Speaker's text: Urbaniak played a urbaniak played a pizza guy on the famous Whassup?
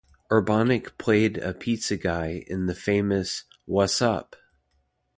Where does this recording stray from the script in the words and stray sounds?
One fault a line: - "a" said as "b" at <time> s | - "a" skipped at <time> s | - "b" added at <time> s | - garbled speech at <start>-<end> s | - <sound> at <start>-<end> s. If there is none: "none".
- "urbaniak played a" skipped at 1.5 s
- "on" said as "in" at 2.5 s